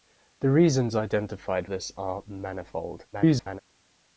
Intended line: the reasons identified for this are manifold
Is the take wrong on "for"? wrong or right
wrong